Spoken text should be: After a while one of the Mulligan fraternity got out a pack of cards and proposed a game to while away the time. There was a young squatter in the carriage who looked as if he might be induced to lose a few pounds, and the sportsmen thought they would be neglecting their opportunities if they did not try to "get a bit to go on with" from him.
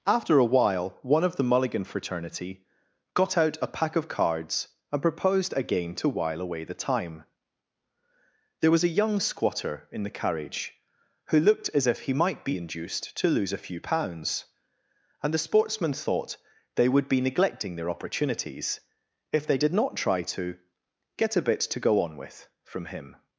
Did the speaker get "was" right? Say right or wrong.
right